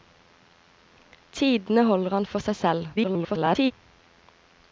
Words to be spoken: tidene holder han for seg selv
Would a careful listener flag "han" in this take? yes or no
no